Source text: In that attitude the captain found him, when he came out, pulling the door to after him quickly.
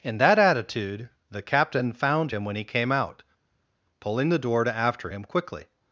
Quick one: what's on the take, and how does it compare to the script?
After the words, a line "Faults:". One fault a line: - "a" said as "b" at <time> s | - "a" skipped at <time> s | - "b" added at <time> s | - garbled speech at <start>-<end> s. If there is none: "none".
In that attitude the captain found him, when he came out, pulling the door to after him quickly.
Faults:
none